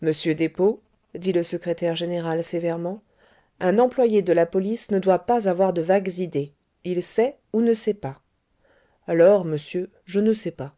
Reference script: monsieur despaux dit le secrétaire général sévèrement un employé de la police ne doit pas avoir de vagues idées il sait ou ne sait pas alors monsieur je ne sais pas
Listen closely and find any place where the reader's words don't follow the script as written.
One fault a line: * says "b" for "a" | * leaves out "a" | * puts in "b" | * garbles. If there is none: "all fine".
all fine